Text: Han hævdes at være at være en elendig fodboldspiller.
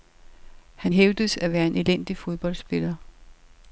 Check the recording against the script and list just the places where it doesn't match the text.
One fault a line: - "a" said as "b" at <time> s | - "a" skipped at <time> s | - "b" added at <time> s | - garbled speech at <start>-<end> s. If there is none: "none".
- "at være" skipped at 1.7 s